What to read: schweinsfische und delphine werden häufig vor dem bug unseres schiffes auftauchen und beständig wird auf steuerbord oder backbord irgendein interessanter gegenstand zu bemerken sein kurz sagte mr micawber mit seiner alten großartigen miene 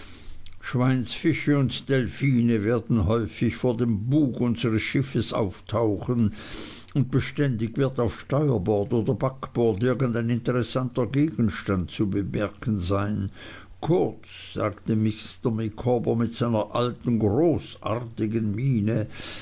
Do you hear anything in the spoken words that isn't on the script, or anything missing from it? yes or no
no